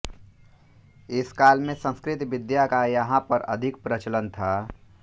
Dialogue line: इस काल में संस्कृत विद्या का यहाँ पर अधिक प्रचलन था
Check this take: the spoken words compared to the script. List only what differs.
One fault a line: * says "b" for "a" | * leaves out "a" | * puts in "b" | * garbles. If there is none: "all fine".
all fine